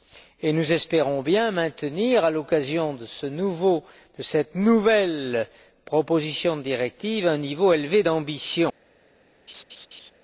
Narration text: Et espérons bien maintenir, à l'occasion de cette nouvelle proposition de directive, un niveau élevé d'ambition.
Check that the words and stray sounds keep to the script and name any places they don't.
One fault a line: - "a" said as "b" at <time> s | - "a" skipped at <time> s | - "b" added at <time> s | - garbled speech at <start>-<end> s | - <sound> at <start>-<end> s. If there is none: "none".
- "nous" added at 0.5 s
- laugh at 9.5-10.1 s